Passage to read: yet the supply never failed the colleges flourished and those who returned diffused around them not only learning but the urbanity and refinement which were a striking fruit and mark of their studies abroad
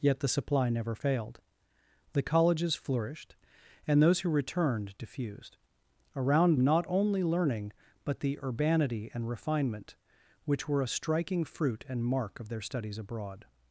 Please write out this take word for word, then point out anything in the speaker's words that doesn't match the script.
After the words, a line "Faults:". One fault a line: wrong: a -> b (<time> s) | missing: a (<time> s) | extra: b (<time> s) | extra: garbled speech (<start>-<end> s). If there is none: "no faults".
yet the supply never failed the colleges flourished and those who returned diffused around not only learning but the urbanity and refinement which were a striking fruit and mark of their studies abroad
Faults:
missing: them (6.6 s)